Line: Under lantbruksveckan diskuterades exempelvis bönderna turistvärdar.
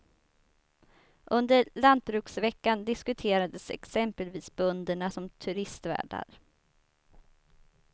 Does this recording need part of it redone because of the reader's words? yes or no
yes